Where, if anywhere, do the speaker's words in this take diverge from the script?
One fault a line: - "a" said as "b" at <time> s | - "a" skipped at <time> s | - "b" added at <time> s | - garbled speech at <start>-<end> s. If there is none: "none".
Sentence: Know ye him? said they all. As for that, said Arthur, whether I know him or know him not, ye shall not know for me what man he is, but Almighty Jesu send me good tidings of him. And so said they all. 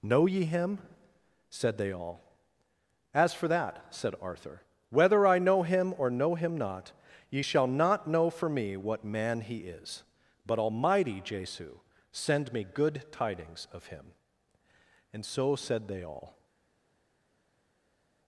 none